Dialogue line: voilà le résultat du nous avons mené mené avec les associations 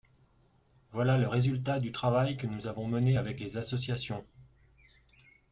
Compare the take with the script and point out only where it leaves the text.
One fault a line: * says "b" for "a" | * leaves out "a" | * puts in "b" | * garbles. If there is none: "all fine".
* puts in "travail que"
* leaves out "mené"